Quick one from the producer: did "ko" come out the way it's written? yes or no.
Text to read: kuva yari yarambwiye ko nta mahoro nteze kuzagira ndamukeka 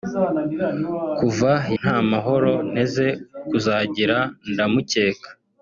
no